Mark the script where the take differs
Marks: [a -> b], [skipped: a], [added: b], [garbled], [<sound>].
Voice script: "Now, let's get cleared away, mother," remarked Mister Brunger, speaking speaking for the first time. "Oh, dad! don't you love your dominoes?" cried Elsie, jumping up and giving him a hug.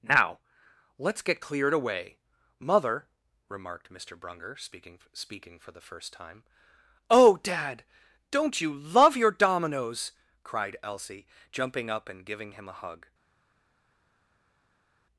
"Now, let's get cleared away, mother," remarked Mister Brunger, speaking speaking for the first time. "Oh, dad! don't you love your dominoes?" cried Elsie, jumping up and giving him a hug.